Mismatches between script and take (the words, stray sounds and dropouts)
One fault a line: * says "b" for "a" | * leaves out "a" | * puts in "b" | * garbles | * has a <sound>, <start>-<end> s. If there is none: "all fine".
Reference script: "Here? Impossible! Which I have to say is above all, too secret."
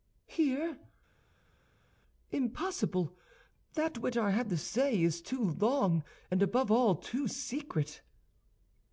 * puts in "That"
* puts in "too long and"